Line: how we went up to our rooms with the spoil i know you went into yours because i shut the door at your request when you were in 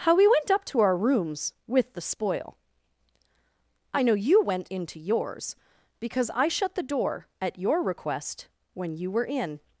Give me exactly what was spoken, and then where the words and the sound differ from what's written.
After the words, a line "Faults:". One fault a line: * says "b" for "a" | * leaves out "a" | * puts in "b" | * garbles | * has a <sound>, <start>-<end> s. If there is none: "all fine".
how we went up to our rooms with the spoil i know you went into yours because i shut the door at your request when you were in
Faults:
all fine